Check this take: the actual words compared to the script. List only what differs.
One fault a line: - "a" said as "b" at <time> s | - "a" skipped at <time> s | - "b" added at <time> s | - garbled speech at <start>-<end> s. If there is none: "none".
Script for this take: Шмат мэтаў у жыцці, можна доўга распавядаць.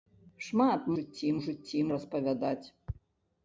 - "мэтаў" said as "жыцці" at 1.0 s
- "можна доўга" skipped at 1.8 s